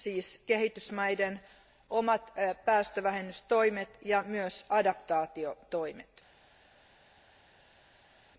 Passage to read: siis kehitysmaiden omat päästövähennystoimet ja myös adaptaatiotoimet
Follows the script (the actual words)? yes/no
yes